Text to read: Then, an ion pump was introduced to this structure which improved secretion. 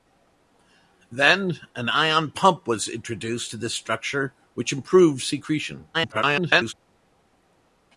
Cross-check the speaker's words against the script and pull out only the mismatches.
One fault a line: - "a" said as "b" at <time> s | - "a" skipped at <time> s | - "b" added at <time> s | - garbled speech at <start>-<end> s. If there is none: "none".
- garbled speech at 5.9-6.7 s